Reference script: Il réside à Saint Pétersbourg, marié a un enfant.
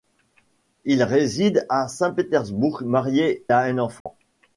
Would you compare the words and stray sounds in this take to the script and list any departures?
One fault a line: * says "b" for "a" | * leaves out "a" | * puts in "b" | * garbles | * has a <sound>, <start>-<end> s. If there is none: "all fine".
* has a dropout, 4.0-4.1 s